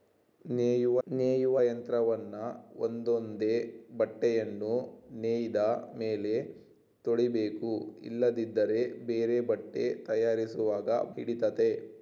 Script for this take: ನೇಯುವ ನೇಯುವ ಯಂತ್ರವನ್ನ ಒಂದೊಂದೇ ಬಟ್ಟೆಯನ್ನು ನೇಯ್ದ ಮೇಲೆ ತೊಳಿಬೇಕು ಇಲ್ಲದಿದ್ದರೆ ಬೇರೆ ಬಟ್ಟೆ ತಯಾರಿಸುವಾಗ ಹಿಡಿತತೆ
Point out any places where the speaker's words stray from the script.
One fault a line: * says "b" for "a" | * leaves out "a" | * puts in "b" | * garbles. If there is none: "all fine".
all fine